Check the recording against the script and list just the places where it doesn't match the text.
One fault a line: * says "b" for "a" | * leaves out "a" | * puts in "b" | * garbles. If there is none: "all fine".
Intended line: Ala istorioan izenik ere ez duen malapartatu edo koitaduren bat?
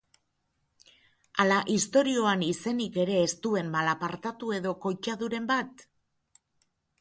all fine